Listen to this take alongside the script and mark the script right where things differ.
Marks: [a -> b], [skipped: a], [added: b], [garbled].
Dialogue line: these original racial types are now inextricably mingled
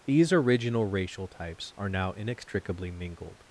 these original racial types are now inextricably mingled